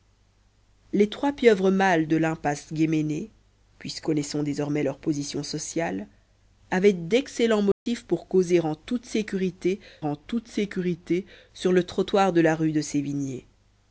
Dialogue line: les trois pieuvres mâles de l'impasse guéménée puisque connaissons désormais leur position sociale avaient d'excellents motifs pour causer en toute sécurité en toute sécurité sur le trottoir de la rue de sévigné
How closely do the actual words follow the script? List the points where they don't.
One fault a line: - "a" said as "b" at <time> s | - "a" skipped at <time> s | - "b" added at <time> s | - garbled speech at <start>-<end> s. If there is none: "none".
none